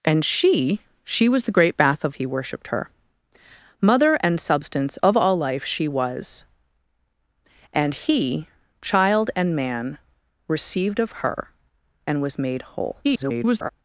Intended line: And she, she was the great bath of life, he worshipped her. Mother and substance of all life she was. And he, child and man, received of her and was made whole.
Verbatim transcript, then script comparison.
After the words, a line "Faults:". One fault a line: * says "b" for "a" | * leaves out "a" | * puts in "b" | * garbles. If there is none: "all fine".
And she, she was the great bath of he worshipped her. Mother and substance of all life she was. And he, child and man, received of her and was made whole. [garbled]
Faults:
* leaves out "life"
* garbles